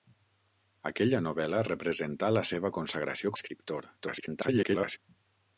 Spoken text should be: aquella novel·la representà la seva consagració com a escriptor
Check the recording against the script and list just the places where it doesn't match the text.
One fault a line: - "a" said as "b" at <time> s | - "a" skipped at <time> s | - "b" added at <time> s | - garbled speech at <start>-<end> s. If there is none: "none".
- "com" skipped at 3.4 s
- garbled speech at 4.0-5.0 s